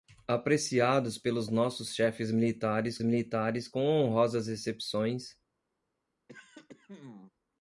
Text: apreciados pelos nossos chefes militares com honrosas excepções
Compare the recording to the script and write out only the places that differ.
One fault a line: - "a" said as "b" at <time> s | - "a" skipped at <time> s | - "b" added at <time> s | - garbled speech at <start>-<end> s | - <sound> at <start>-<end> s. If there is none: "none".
- "militares" added at 3.0 s
- throat clearing at 6.3-7.3 s